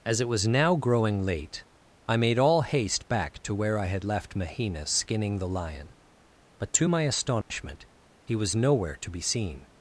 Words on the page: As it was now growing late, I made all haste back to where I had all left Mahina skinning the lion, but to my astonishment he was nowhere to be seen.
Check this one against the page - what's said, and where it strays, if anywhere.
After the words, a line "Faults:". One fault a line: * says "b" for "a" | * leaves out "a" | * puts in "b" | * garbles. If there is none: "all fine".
As it was now growing late, I made all haste back to where I had left Mahina skinning the lion, but to my astonishment he was nowhere to be seen.
Faults:
* leaves out "all"